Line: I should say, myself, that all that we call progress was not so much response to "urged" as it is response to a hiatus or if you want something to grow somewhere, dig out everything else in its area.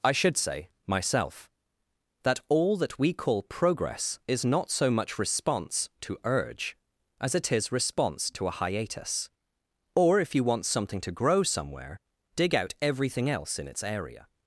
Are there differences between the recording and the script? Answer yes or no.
yes